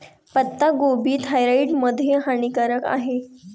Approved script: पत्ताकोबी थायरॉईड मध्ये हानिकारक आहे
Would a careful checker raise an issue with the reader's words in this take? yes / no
no